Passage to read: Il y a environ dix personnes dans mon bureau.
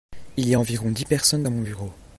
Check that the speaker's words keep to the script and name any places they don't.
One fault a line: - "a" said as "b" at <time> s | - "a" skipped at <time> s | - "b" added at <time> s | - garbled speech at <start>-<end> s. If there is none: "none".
none